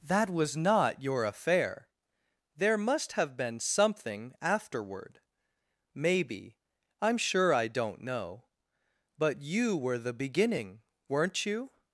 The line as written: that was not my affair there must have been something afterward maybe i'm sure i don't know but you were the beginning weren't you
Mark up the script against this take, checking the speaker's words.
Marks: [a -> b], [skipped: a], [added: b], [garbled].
that was not [my -> your] affair there must have been something afterward maybe i'm sure i don't know but you were the beginning weren't you